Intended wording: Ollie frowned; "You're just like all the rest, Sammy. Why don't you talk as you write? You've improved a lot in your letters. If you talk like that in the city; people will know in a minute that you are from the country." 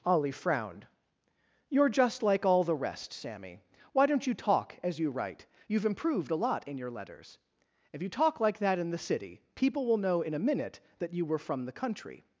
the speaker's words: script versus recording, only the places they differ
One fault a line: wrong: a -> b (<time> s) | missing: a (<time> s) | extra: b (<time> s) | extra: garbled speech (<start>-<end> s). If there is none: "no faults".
wrong: are -> were (11.2 s)